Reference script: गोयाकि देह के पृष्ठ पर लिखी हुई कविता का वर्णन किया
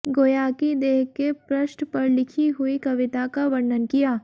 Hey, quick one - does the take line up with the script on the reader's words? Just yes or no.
yes